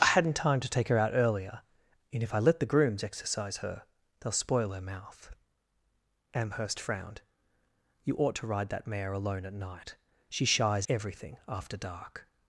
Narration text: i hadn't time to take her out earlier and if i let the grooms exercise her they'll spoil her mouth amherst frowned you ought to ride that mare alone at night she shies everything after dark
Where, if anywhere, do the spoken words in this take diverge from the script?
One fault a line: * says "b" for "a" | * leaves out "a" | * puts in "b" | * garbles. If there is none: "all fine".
all fine